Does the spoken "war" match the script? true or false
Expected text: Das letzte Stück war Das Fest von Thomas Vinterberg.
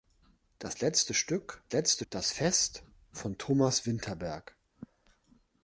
false